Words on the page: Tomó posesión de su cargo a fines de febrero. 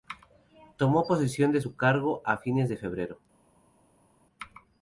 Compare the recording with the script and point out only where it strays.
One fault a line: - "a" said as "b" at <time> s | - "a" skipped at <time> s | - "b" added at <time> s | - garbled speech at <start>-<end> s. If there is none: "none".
none